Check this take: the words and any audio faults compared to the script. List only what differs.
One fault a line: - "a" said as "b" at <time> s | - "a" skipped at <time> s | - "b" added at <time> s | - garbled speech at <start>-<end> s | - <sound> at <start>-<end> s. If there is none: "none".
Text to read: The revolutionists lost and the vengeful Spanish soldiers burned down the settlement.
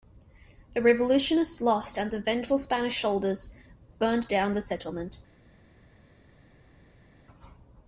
none